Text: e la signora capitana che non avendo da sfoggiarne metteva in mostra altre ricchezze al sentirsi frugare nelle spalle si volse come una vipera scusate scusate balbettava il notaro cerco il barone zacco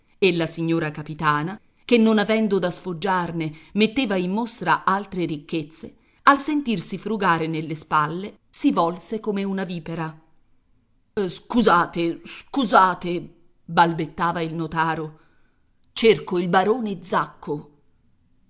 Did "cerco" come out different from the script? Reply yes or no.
no